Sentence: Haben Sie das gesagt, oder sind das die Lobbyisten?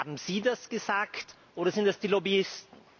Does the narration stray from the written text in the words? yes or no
no